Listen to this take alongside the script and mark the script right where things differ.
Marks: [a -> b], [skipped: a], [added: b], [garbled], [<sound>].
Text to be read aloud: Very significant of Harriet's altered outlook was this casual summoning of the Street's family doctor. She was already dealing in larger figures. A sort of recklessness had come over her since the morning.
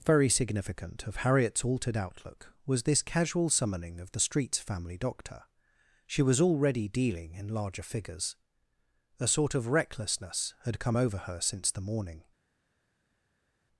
Very significant of Harriet's altered outlook was this casual summoning of the Street's family doctor. She was already dealing in larger figures. A sort of recklessness had come over her since the morning.